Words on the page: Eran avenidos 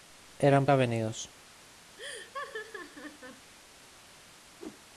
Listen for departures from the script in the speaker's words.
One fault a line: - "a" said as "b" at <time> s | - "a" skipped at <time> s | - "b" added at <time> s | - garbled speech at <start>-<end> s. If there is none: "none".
none